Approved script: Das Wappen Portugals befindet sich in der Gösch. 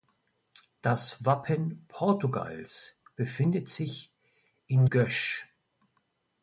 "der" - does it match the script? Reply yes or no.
no